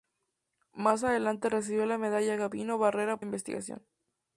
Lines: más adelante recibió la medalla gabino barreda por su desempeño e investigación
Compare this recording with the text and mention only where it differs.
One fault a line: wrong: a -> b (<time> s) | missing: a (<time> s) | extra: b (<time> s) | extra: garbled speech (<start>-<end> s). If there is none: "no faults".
missing: por su desempeño (3.2 s)